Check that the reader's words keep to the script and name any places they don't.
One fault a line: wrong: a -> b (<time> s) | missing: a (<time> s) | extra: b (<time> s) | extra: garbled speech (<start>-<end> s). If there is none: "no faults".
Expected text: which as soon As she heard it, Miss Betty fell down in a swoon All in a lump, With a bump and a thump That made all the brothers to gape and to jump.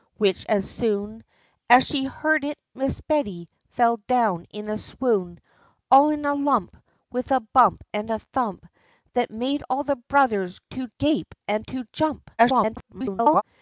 extra: garbled speech (12.4-13.4 s)